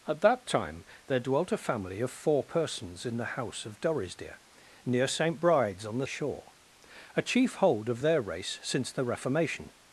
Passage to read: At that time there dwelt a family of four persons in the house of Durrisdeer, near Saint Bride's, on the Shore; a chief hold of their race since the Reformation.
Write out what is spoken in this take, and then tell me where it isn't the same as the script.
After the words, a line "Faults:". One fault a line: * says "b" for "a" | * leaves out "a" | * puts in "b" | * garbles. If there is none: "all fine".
At that time there dwelt a family of four persons in the house of Durrisdeer, near Saint Bride's, on the Shore; a chief hold of their race since the Reformation.
Faults:
all fine